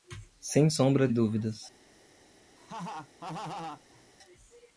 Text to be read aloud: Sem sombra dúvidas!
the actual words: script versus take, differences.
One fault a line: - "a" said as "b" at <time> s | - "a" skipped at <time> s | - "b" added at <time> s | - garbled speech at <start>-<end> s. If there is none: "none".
none